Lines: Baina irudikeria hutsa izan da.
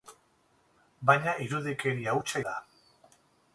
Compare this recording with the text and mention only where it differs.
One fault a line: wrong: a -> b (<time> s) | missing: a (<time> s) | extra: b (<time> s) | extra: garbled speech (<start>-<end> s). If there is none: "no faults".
missing: izan (2.4 s)